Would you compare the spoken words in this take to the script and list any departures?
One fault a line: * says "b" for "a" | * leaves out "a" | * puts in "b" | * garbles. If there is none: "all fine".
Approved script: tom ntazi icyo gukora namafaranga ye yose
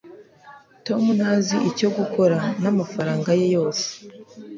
all fine